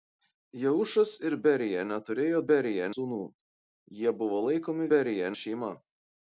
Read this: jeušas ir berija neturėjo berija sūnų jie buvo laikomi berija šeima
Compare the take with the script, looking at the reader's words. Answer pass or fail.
pass